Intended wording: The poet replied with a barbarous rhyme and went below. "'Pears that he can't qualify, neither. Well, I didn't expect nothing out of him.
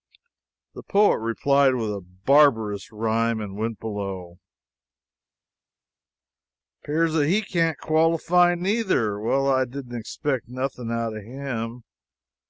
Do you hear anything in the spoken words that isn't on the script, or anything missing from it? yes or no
no